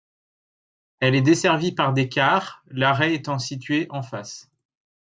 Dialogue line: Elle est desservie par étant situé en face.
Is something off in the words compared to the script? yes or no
yes